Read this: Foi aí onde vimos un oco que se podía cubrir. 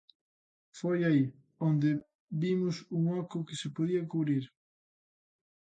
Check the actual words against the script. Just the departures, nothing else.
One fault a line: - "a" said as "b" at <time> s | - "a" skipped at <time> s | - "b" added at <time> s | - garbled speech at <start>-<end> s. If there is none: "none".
none